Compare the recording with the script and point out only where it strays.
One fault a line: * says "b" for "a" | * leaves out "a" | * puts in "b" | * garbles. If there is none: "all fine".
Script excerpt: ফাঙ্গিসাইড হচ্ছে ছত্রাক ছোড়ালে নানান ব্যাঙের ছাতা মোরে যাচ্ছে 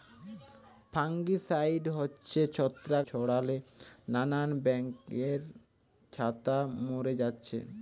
all fine